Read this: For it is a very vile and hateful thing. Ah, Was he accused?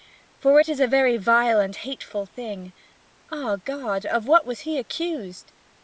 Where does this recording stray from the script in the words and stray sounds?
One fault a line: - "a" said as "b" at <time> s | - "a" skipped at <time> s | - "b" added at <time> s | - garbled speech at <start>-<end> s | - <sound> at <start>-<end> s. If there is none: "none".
- "God of what" added at 3.6 s